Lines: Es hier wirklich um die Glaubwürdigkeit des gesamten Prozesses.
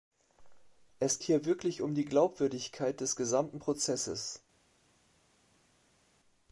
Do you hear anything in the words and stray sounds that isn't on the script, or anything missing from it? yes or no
no